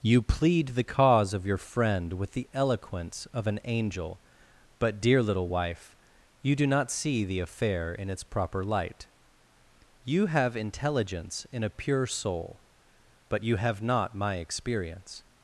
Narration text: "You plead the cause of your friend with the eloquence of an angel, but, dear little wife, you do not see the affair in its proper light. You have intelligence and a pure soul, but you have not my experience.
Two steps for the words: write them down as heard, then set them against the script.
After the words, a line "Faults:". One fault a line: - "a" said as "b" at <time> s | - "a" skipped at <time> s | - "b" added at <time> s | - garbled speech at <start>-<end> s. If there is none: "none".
"You plead the cause of your friend with the eloquence of an angel, but, dear little wife, you do not see the affair in its proper light. You have intelligence in a pure soul, but you have not my experience.
Faults:
- "and" said as "in" at 11.5 s